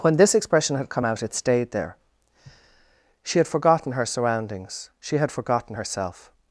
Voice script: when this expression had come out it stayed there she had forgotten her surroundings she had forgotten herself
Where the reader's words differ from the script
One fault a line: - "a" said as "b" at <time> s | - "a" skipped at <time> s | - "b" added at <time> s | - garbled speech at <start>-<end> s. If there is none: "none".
none